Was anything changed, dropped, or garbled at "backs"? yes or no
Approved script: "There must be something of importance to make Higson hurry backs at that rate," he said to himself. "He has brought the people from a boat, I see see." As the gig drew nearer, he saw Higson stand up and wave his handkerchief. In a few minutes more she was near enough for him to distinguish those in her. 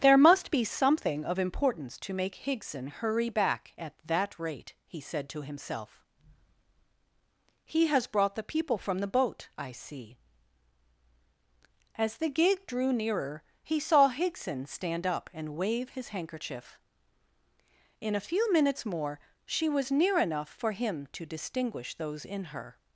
yes